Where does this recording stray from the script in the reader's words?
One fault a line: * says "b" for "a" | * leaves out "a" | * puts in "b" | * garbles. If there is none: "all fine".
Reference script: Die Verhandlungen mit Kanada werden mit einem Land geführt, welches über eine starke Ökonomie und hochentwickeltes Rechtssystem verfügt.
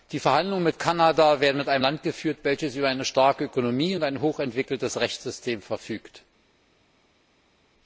* puts in "ein"